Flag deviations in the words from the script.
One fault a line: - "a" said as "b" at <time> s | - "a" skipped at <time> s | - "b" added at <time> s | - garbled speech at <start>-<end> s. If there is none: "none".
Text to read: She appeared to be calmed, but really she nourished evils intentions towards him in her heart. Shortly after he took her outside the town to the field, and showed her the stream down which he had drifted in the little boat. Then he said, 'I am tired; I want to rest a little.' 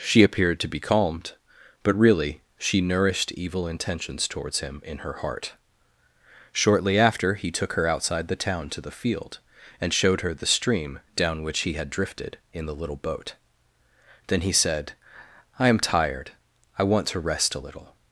- "evils" said as "evil" at 3.3 s